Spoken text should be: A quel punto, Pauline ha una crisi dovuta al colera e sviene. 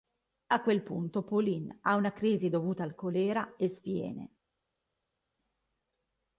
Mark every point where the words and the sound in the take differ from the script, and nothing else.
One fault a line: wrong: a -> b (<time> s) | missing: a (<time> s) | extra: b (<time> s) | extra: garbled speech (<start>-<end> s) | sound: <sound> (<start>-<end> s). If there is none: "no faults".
no faults